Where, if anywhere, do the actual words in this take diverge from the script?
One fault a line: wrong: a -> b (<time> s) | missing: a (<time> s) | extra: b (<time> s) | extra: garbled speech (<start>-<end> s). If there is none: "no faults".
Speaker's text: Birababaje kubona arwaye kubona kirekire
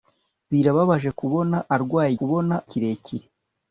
no faults